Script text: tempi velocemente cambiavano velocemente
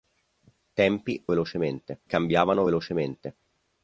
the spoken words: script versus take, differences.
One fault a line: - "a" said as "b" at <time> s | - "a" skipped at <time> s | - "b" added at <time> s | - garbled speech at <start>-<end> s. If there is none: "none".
none